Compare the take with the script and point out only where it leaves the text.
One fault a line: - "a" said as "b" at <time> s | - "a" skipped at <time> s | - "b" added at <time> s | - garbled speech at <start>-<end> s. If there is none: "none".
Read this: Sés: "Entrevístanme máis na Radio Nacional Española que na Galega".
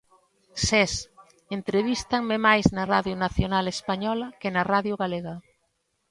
- "Radio" added at 4.7 s